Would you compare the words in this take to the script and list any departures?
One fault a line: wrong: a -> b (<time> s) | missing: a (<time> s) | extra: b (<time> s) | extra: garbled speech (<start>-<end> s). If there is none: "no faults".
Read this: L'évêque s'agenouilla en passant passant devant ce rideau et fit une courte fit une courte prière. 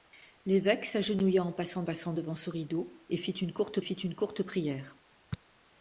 no faults